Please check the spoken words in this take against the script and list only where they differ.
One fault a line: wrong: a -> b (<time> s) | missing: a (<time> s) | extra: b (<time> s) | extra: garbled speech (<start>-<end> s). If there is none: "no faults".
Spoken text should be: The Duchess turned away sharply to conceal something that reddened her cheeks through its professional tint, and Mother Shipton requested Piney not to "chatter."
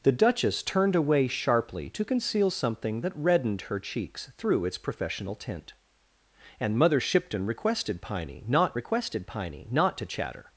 extra: requested Piney not (8.7 s)